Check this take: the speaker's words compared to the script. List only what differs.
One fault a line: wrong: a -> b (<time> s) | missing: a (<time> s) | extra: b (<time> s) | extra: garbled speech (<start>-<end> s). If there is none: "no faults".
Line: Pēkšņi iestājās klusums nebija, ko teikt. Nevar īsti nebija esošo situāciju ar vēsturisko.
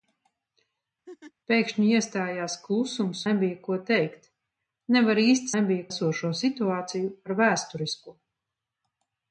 no faults